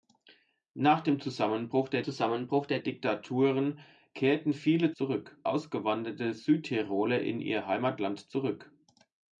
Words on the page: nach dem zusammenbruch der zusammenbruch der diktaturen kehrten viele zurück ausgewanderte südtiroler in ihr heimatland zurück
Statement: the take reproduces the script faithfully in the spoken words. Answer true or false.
true